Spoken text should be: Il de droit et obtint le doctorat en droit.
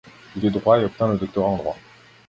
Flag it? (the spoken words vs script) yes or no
no